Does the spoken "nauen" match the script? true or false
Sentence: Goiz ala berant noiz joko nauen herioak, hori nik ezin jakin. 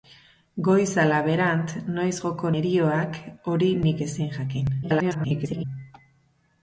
false